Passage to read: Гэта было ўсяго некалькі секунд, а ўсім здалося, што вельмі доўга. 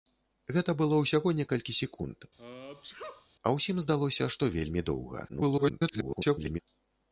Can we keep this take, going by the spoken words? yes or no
no